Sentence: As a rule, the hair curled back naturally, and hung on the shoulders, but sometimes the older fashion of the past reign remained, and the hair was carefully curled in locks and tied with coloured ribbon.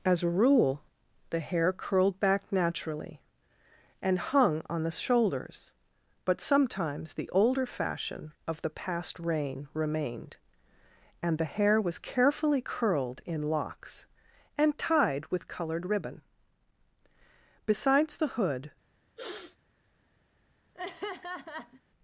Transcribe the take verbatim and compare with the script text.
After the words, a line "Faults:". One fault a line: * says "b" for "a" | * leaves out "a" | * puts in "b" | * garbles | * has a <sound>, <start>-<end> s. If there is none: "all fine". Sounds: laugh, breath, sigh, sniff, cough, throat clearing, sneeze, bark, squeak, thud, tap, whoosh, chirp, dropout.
As a rule, the hair curled back naturally, and hung on the shoulders, but sometimes the older fashion of the past reign remained, and the hair was carefully curled in locks and tied with coloured ribbon. Besides the hood
Faults:
* puts in "Besides the hood"
* has a sniff, 19.2-19.6 s
* has a laugh, 20.7-21.8 s